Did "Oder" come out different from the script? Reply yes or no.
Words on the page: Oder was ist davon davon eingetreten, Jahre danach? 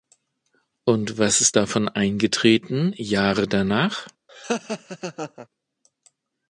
yes